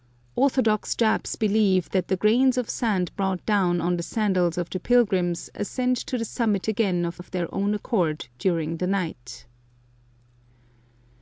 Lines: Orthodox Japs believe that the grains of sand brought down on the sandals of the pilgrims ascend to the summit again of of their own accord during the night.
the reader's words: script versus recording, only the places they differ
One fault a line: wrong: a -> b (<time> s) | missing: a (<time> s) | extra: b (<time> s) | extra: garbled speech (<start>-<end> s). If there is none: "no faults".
no faults